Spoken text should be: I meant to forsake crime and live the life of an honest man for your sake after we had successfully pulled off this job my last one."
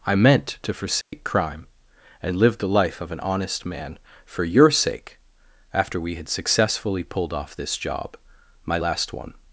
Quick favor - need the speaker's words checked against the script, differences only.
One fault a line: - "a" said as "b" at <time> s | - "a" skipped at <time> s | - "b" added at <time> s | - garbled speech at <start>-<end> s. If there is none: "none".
none